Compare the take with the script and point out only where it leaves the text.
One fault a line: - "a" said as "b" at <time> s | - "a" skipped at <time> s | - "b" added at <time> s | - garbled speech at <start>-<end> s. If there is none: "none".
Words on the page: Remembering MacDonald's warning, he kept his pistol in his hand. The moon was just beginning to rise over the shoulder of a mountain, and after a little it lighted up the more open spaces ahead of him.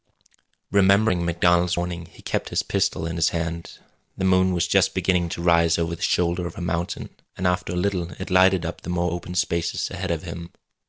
none